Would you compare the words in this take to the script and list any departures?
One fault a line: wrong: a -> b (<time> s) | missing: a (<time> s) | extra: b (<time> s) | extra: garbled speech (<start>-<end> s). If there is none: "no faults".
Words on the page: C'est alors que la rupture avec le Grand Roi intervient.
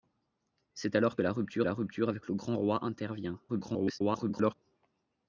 extra: la rupture (1.6 s)
extra: garbled speech (3.5-4.5 s)